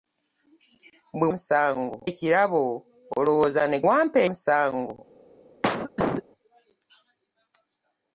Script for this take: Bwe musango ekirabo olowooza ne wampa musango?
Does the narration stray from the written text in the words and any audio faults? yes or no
yes